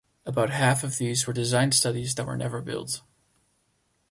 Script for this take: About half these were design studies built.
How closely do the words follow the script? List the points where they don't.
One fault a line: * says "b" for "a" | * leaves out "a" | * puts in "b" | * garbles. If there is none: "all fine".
* puts in "of"
* puts in "that were never"